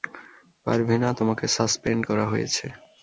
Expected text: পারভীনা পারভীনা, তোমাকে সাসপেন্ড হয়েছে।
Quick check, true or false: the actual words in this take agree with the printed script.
false